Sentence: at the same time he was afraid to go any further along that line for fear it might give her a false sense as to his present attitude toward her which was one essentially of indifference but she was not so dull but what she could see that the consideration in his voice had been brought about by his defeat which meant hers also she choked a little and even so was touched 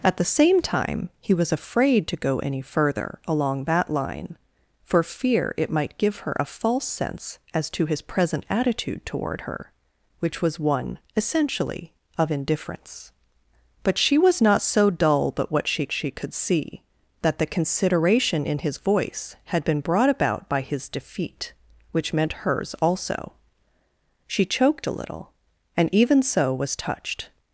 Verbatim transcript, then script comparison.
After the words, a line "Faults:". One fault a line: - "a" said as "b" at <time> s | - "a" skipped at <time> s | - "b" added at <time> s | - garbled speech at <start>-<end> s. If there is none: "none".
at the same time he was afraid to go any further along that line for fear it might give her a false sense as to his present attitude toward her which was one essentially of indifference but she was not so dull but what she she could see that the consideration in his voice had been brought about by his defeat which meant hers also she choked a little and even so was touched
Faults:
- "she" added at 15.9 s